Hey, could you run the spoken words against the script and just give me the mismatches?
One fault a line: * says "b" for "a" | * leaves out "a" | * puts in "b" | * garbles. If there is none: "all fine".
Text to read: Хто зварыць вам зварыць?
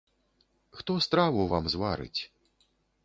* says "страву" for "зварыць"